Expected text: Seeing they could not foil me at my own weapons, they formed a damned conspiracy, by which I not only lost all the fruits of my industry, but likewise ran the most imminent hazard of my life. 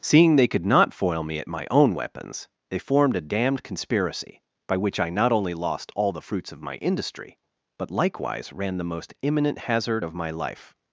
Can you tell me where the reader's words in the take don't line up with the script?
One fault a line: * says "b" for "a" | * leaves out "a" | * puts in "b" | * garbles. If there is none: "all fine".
all fine